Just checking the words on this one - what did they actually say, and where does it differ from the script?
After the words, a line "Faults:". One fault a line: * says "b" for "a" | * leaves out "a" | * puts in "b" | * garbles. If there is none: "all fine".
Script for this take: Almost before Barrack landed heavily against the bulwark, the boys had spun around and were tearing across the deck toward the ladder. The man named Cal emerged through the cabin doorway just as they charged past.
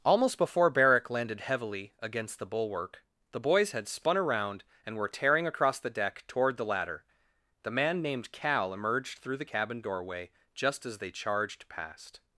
Almost before Barrack landed heavily against the bulwark, the boys had spun around and were tearing across the deck toward the ladder. The man named Cal emerged through the cabin doorway just as they charged past.
Faults:
all fine